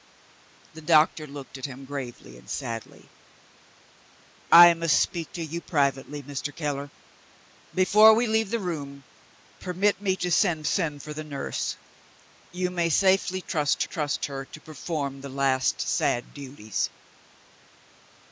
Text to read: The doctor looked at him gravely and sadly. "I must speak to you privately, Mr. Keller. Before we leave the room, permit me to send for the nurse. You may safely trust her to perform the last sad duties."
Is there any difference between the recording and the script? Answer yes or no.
yes